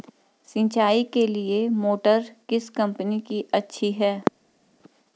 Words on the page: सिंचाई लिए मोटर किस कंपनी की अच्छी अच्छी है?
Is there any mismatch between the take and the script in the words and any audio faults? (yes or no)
yes